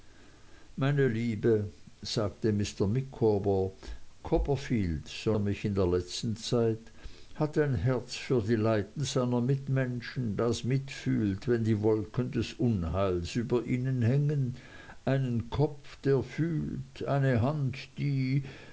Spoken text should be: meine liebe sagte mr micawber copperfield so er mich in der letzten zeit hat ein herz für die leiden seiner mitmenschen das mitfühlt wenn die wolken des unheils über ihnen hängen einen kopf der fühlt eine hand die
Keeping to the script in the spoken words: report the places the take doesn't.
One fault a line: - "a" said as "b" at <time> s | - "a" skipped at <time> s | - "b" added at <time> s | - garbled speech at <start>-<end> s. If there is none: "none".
none